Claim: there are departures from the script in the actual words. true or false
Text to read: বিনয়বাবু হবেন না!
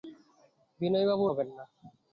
false